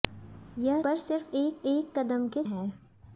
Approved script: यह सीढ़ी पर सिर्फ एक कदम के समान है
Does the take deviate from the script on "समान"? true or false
true